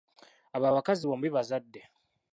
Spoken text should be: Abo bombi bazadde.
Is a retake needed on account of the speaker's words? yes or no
yes